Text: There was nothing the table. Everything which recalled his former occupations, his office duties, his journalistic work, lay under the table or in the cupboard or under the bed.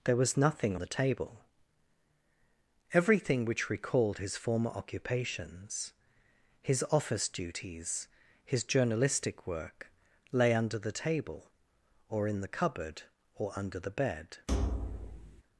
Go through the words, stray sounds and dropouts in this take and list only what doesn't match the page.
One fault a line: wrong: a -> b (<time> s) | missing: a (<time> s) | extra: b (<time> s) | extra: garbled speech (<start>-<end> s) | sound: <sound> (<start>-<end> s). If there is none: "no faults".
sound: thud (14.5-15.4 s)